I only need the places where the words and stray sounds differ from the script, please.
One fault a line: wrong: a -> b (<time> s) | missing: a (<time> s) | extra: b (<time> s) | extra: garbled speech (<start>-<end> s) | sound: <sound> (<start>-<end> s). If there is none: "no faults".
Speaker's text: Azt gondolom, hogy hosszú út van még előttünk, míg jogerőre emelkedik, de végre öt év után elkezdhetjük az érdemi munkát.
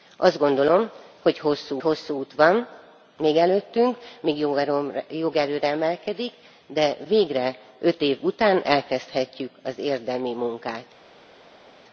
extra: hosszú (1.8 s)